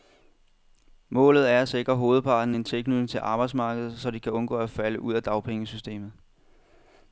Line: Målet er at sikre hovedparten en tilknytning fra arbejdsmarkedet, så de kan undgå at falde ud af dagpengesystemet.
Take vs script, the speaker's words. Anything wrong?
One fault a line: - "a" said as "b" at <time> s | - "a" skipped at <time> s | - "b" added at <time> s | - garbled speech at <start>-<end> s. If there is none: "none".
- "fra" said as "til" at 3.1 s